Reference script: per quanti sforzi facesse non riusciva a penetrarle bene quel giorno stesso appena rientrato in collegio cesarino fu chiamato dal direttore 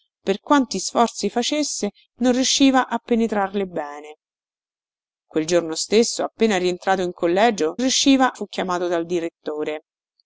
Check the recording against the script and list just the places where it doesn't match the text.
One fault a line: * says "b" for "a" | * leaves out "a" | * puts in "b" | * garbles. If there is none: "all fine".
* says "riusciva" for "cesarino"